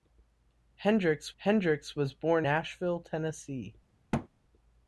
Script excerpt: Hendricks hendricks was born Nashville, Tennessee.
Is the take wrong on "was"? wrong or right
right